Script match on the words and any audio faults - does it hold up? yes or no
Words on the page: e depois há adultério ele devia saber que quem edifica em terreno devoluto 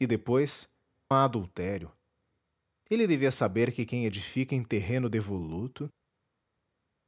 yes